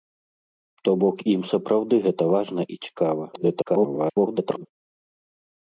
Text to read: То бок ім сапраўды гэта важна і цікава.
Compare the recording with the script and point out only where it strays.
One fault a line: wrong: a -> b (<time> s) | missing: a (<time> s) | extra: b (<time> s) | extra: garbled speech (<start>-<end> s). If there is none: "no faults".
extra: garbled speech (3.3-4.7 s)